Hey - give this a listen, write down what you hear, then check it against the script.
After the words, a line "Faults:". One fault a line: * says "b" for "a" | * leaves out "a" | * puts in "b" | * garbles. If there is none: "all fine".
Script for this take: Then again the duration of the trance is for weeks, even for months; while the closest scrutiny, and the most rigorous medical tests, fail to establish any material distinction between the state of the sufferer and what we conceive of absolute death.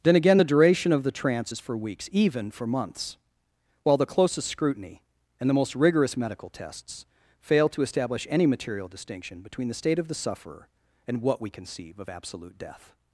Then again the duration of the trance is for weeks, even for months; while the closest scrutiny, and the most rigorous medical tests, fail to establish any material distinction between the state of the sufferer and what we conceive of absolute death.
Faults:
all fine